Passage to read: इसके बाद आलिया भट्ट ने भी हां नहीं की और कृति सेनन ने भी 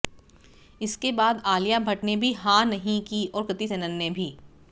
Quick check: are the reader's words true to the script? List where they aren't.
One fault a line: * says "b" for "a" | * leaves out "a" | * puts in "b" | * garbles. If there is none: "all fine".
all fine